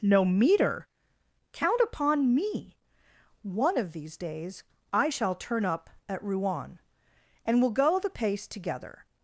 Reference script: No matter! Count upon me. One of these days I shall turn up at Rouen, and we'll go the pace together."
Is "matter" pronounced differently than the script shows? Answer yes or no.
yes